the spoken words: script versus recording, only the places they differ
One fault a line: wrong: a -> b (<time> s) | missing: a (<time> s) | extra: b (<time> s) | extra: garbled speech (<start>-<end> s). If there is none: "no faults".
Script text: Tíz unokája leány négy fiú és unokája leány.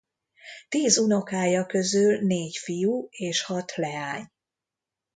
wrong: leány -> közül (1.6 s)
wrong: unokája -> hat (3.4 s)